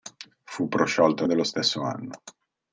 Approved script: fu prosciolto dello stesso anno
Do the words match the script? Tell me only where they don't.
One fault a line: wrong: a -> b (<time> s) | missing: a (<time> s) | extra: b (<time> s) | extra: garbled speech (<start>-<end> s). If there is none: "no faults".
no faults